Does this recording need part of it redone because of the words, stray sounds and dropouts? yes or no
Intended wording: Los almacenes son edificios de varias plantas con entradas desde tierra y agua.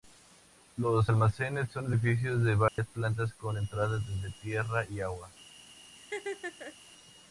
yes